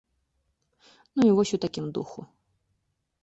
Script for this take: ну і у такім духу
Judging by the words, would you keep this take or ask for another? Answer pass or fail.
fail